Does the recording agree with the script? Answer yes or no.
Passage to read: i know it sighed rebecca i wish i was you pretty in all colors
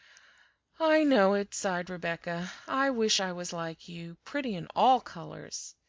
no